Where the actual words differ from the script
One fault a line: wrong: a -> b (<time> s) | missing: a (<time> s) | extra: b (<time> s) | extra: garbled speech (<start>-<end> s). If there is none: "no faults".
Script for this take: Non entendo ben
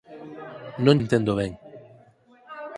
no faults